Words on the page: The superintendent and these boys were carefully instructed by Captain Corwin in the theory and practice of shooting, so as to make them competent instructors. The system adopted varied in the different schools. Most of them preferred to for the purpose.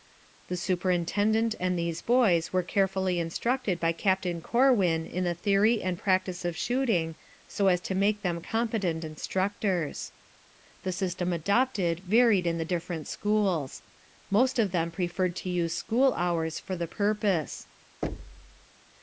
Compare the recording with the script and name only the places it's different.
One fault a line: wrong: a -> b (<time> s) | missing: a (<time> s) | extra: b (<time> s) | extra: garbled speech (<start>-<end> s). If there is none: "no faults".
extra: use school hours (15.5 s)